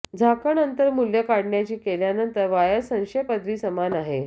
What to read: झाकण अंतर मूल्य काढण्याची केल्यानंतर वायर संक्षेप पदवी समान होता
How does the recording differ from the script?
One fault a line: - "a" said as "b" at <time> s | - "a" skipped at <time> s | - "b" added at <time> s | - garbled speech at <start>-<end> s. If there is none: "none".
- "होता" said as "आहे" at 3.9 s